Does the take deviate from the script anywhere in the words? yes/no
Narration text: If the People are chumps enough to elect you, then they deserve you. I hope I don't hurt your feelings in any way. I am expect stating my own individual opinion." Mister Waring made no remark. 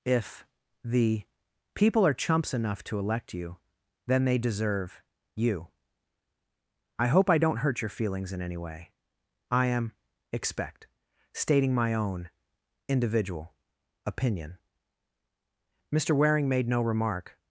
no